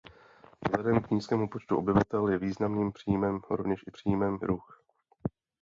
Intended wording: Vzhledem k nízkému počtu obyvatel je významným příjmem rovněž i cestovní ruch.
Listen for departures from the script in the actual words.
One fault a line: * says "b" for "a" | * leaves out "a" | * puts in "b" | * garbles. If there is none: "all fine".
* says "příjmem" for "cestovní"